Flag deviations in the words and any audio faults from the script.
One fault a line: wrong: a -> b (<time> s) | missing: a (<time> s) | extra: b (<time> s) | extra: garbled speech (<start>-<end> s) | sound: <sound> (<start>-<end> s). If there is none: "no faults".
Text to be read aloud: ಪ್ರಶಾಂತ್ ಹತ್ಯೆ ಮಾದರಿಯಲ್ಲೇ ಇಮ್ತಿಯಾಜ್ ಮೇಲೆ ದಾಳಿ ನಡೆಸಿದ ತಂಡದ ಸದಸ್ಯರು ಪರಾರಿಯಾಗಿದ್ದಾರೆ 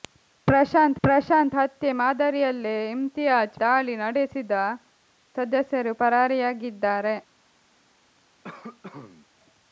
extra: ಪ್ರಶಾಂತ್ (1.0 s)
missing: ಮೇಲೆ (3.6 s)
missing: ತಂಡದ (4.5 s)
sound: cough (8.4-9.3 s)